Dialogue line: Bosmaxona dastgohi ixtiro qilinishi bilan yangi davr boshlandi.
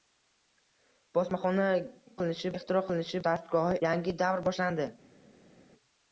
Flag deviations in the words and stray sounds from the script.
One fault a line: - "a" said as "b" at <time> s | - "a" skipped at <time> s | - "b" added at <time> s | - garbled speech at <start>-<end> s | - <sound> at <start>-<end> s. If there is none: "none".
- "dastgohi" said as "qilinishi" at 2.2 s
- "bilan" said as "dastgohi" at 3.3 s